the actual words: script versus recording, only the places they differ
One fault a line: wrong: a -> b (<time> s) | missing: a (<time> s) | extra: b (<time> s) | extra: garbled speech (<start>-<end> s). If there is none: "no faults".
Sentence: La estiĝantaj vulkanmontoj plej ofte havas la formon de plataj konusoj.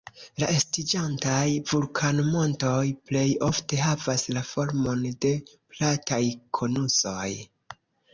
no faults